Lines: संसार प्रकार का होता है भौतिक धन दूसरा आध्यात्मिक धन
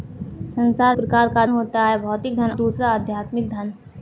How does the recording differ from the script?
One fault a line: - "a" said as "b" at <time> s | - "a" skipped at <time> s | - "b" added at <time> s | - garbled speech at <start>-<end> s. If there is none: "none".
none